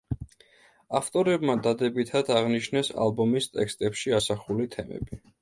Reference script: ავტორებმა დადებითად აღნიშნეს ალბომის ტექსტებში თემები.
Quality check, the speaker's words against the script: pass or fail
fail